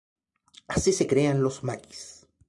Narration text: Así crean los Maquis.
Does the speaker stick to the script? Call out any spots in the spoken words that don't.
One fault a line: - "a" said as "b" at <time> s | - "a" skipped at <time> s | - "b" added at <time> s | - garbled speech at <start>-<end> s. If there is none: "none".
- "se" added at 0.9 s